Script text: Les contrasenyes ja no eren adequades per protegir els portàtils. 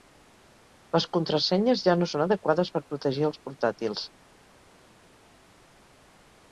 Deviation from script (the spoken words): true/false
true